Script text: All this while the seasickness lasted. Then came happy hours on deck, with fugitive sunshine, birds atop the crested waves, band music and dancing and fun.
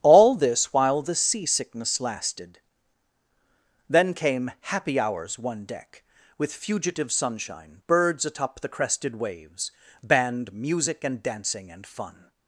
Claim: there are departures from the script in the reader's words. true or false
true